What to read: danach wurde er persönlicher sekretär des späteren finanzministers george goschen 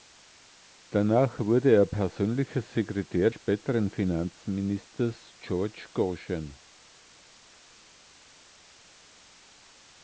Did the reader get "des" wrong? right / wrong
wrong